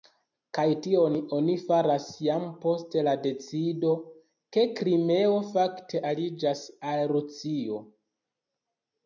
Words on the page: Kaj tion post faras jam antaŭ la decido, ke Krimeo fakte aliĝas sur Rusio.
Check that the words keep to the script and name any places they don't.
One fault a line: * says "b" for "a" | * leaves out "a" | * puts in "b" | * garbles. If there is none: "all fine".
* says "oni" for "post"
* says "post" for "antaŭ"
* says "al" for "sur"